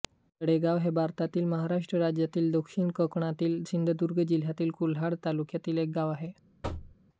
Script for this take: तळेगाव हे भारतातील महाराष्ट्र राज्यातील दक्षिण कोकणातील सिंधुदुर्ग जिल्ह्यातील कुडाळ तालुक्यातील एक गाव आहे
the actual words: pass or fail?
pass